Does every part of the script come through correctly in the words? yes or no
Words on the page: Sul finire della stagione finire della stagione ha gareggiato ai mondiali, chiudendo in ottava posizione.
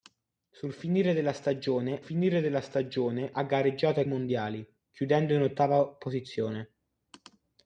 yes